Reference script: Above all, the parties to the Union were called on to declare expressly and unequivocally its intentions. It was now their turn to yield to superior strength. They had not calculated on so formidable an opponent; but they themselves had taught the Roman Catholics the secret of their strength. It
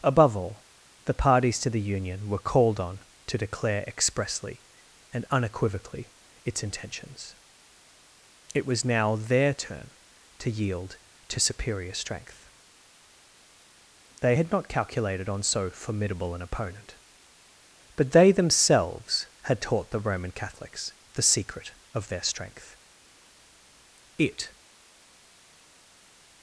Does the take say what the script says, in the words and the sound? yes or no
yes